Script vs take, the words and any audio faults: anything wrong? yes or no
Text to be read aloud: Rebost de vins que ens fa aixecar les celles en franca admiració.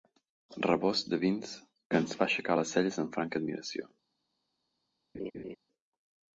yes